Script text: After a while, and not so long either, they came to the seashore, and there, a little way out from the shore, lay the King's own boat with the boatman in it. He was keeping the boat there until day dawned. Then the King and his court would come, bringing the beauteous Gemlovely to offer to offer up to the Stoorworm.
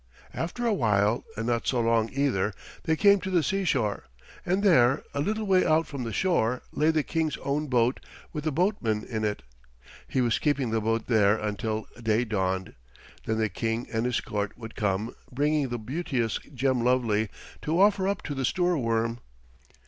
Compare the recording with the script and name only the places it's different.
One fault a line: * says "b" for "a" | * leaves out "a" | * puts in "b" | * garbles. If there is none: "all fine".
* leaves out "to offer"